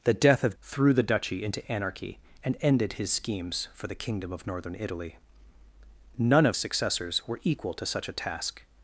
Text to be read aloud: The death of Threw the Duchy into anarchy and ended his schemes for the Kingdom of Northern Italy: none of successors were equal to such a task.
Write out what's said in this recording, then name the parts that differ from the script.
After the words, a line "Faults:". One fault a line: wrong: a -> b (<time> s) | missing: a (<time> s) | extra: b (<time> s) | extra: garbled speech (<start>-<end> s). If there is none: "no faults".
The death of Threw the Duchy into anarchy and ended his schemes for the Kingdom of Northern Italy: none of successors were equal to such a task.
Faults:
no faults